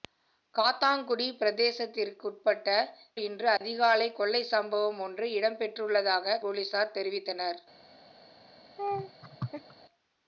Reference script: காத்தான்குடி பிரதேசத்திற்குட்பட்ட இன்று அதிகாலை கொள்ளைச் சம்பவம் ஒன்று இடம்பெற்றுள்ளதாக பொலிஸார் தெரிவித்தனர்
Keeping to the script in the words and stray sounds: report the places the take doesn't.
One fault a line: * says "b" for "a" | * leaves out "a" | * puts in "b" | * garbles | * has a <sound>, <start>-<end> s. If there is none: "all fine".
* has a dropout, 3.6-3.6 s
* has a laugh, 8.8-9.8 s